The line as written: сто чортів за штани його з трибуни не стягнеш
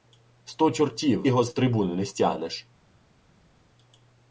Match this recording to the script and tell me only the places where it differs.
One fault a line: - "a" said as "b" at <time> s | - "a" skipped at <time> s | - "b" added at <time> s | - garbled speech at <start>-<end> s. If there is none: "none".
- "за штани" skipped at 1.3 s